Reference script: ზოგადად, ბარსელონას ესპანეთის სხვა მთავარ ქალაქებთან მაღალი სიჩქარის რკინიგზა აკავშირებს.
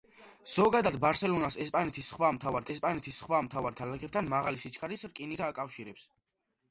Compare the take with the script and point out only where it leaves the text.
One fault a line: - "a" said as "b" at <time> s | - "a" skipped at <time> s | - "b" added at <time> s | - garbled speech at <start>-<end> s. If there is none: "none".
- "ესპანეთის სხვა მთავარ" added at 2.7 s